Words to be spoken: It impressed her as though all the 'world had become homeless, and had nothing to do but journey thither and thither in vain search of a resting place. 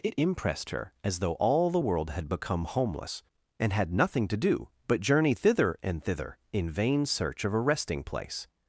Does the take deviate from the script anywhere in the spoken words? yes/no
no